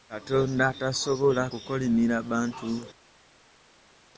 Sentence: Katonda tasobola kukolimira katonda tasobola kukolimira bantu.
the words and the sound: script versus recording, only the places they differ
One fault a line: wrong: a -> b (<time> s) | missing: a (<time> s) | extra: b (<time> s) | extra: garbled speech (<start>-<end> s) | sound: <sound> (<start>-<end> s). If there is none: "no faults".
missing: katonda tasobola kukolimira (2.2 s)